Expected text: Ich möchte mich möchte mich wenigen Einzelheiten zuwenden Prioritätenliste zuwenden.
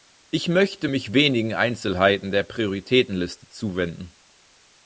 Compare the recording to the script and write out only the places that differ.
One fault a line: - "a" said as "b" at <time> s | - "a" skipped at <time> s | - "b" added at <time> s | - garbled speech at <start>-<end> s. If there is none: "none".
- "möchte mich" skipped at 1.1 s
- "zuwenden" said as "der" at 2.3 s